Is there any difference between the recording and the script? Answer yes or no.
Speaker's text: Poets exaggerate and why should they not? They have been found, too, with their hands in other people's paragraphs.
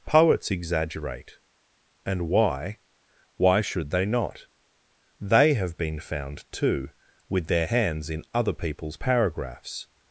yes